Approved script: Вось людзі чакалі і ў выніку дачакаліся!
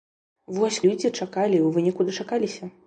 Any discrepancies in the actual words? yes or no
no